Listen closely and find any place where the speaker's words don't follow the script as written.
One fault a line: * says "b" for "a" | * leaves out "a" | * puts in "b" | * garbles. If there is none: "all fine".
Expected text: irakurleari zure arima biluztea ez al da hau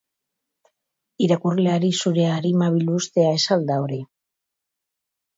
* says "hori" for "hau"